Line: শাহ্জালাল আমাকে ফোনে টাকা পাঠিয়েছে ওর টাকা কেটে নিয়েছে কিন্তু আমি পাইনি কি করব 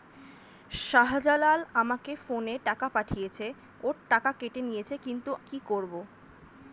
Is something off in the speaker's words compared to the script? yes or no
yes